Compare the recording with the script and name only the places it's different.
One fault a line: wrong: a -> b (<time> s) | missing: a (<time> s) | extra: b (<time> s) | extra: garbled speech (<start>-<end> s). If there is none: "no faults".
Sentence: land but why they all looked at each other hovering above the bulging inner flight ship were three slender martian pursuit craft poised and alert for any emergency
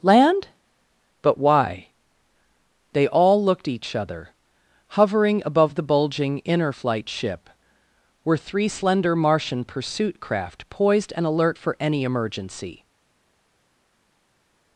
missing: at (3.7 s)